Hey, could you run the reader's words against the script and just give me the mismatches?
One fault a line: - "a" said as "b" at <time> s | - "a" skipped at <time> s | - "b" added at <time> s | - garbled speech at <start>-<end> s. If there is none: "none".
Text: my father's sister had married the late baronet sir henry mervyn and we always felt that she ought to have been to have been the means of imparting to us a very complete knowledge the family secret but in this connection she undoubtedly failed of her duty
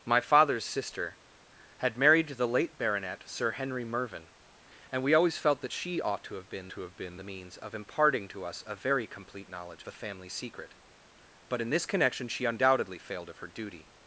none